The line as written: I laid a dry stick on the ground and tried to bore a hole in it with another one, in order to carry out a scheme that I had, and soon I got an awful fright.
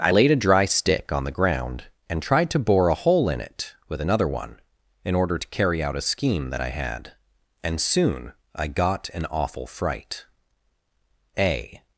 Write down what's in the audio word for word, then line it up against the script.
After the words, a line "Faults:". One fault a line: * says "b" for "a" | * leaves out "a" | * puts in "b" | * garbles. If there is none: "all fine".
I laid a dry stick on the ground and tried to bore a hole in it with another one, in order to carry out a scheme that I had, and soon I got an awful fright. A
Faults:
* puts in "A"